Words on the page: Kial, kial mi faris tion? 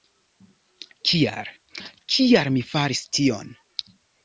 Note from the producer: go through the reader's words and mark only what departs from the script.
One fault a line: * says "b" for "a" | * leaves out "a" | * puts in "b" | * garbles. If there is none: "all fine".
all fine